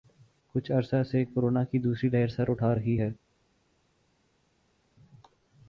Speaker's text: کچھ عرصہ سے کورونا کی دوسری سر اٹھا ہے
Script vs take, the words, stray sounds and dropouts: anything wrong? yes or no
yes